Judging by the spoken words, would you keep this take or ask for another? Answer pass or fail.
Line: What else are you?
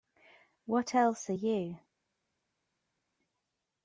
pass